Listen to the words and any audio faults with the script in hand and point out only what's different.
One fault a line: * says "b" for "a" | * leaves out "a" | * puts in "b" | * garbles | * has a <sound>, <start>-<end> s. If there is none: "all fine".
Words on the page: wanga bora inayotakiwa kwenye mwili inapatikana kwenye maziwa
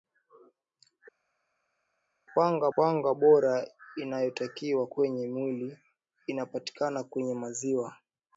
* puts in "wanga"